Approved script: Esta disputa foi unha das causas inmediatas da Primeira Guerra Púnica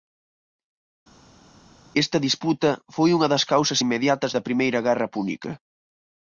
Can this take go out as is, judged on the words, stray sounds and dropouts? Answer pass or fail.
pass